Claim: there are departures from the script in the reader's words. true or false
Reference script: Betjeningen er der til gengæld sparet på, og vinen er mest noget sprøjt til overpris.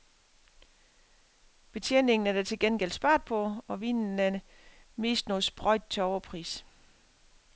false